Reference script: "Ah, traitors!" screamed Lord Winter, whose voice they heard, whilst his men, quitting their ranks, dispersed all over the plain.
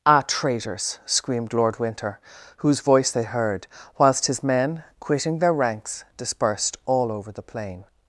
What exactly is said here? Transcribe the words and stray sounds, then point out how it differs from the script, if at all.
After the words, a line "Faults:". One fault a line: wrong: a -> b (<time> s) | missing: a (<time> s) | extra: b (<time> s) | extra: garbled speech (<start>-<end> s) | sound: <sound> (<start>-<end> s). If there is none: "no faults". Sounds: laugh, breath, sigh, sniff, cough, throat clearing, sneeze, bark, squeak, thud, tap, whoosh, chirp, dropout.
"Ah, traitors!" screamed Lord Winter, whose voice they heard, whilst his men, quitting their ranks, dispersed all over the plain.
Faults:
no faults